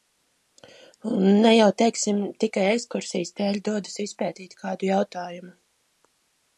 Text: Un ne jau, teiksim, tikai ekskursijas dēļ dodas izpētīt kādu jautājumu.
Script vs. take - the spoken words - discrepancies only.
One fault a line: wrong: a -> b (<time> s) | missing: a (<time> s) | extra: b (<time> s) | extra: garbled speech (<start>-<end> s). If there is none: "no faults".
no faults